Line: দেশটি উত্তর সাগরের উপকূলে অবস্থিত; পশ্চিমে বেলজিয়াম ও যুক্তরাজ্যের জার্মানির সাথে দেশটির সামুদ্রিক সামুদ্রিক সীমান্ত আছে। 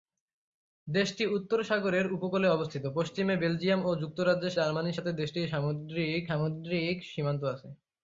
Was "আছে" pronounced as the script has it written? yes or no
yes